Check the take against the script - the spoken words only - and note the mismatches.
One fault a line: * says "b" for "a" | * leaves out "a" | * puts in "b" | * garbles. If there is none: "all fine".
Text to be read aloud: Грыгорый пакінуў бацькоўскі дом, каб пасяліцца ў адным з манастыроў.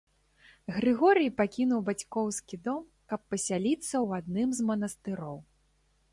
all fine